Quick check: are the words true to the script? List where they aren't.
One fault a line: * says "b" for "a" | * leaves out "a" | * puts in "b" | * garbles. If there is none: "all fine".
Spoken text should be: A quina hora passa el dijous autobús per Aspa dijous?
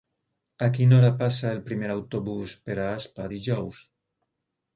* says "primer" for "dijous"